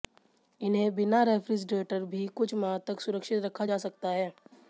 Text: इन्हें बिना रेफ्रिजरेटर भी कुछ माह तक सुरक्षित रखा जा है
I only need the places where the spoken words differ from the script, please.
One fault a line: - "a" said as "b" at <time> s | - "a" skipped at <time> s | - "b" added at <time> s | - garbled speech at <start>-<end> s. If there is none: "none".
- "सकता" added at 3.8 s